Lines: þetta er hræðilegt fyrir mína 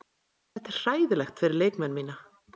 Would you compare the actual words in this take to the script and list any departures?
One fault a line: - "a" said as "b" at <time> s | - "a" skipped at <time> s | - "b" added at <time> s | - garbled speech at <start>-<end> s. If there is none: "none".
- "leikmenn" added at 1.6 s